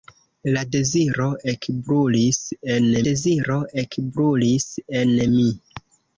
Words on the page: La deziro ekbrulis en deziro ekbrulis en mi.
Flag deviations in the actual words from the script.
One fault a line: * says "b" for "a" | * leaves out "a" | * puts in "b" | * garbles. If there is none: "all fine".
all fine